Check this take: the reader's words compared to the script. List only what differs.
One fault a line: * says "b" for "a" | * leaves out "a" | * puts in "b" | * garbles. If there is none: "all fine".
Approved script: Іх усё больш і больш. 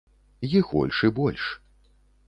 * leaves out "усё"